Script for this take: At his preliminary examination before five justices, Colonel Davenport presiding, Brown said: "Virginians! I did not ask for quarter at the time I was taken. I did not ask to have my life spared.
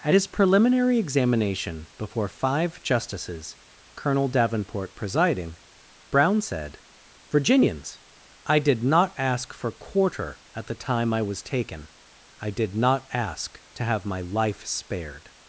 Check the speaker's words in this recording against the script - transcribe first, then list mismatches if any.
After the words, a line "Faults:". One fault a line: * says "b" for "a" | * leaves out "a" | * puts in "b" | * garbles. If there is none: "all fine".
At his preliminary examination before five justices, Colonel Davenport presiding, Brown said: "Virginians! I did not ask for quarter at the time I was taken. I did not ask to have my life spared.
Faults:
all fine